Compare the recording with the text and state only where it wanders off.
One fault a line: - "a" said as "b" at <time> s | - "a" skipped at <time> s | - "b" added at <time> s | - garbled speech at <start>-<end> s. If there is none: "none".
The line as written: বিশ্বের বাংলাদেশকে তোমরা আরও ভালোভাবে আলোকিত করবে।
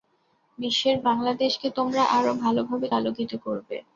none